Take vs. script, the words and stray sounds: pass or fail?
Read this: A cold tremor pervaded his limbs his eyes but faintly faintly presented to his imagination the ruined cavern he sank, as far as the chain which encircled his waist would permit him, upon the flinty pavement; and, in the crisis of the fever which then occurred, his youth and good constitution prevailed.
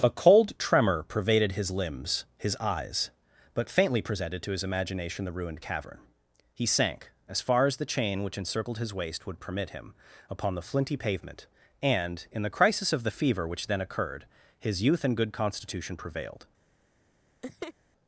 fail